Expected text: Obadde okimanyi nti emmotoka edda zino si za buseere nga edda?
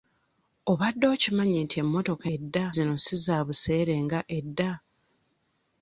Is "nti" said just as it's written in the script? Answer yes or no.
yes